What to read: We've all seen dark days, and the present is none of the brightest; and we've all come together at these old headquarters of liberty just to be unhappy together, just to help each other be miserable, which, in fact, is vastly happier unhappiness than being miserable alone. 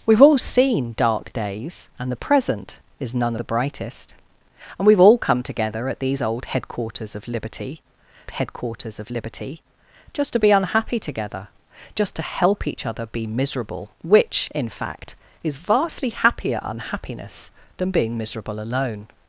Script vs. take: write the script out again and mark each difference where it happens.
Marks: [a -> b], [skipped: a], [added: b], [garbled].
We've all seen dark days, and the present is none [skipped: of] the brightest; and we've all come together at these old headquarters of liberty [added: headquarters of liberty] just to be unhappy together, just to help each other be miserable, which, in fact, is vastly happier unhappiness than being miserable alone.